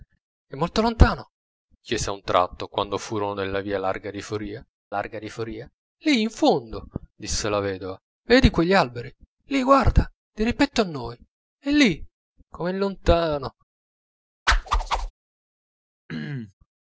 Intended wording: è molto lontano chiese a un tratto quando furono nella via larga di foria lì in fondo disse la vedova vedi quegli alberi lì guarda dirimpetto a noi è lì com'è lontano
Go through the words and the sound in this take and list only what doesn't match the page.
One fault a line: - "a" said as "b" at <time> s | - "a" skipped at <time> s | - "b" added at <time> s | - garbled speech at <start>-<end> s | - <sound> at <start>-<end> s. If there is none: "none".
- "larga di foria" added at 4.9 s
- whoosh at 14.5-15.1 s
- throat clearing at 16.1-16.5 s